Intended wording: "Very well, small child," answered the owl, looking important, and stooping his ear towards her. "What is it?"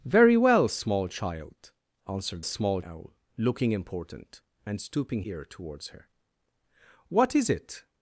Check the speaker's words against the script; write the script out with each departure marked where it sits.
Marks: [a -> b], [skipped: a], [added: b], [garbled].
"Very well, small child," answered [the -> small] owl, looking important, and stooping [skipped: his] ear towards her. "What is it?"